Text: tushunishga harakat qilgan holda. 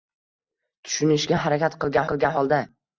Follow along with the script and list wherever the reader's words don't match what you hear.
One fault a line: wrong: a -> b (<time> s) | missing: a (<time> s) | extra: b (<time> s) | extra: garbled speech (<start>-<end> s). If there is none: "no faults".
extra: qilgan (2.1 s)